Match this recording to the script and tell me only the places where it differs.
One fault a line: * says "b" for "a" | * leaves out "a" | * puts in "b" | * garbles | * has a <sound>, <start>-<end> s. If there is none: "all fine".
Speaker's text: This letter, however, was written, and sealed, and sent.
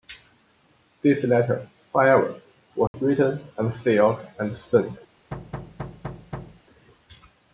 * has a dropout, 2.9-2.9 s
* has a thud, 5.3-6.6 s